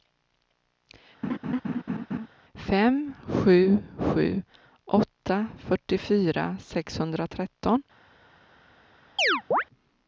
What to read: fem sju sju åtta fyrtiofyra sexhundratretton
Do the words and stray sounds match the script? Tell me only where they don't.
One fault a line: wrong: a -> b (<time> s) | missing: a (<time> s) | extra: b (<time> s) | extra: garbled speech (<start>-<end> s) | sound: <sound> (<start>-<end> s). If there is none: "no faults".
sound: laugh (1.2-2.3 s)
sound: chirp (9.2-9.6 s)